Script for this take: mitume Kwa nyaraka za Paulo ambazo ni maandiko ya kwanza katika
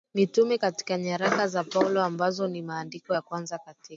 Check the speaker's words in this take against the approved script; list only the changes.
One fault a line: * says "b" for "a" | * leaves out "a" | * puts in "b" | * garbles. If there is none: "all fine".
* says "Katika" for "Kwa"